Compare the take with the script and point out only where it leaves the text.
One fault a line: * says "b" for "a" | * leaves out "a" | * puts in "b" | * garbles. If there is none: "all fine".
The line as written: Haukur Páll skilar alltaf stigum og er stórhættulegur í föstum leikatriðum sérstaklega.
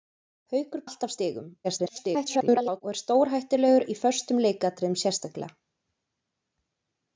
* leaves out "Páll skilar"
* garbles